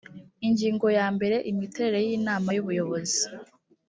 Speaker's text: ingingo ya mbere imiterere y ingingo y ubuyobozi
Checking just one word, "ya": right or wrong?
right